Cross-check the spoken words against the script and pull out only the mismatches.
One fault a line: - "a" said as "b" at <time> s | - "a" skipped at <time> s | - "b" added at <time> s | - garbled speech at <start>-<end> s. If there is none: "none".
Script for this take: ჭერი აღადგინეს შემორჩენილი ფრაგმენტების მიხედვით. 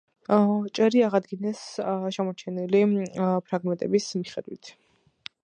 none